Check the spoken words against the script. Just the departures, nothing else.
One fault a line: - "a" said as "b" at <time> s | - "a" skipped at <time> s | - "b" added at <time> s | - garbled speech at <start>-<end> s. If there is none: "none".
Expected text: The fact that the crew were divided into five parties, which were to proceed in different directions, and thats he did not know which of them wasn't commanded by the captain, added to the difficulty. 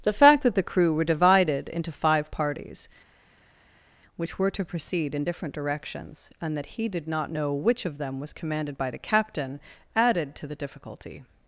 - "thats" said as "that" at 6.6 s
- "wasn't" said as "was" at 8.2 s